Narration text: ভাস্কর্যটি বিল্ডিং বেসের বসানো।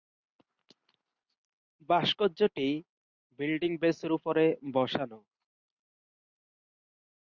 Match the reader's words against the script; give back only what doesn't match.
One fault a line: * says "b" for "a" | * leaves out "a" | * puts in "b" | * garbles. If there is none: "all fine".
* puts in "উপরে"